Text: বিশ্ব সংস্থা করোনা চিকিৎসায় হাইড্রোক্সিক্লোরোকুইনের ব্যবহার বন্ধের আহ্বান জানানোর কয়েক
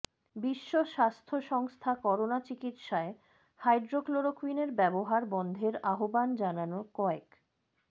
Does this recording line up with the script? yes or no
no